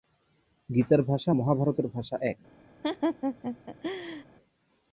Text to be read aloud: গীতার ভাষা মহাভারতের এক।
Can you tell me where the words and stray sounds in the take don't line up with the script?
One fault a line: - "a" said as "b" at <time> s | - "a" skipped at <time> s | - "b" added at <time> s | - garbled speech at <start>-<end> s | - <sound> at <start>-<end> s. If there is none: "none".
- "ভাষা" added at 1.9 s
- laugh at 2.8-4.3 s